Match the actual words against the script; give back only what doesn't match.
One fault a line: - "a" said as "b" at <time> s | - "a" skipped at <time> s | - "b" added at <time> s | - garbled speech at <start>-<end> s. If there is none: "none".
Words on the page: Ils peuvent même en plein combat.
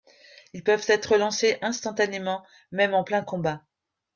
- "être lancés instantanément" added at 0.9 s